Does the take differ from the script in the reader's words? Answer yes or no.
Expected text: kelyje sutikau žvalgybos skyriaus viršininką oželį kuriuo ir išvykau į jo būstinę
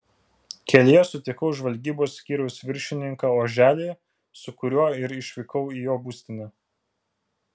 yes